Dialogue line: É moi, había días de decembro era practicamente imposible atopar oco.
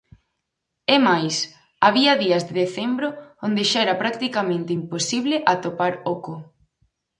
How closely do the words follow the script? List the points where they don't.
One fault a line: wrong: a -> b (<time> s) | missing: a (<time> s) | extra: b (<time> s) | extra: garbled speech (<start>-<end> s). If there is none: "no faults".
wrong: moi -> máis (1.1 s)
extra: onde xa (3.5 s)